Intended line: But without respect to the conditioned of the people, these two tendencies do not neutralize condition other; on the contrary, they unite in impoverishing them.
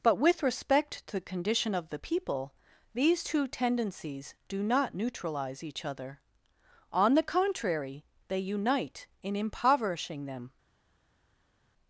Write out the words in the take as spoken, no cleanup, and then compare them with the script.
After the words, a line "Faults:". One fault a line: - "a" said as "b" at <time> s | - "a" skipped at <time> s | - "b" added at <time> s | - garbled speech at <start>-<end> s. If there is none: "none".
But with respect to the condition of the people, these two tendencies do not neutralize each other; on the contrary, they unite in impoverishing them.
Faults:
- "without" said as "with" at 0.1 s
- "conditioned" said as "condition" at 1.2 s
- "condition" said as "each" at 5.6 s